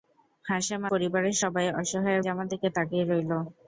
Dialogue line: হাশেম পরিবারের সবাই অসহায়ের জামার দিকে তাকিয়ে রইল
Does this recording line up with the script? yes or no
yes